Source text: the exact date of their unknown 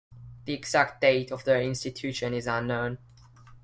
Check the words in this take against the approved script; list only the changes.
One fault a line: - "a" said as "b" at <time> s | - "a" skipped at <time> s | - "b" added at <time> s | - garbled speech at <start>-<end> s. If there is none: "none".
- "institution is" added at 1.6 s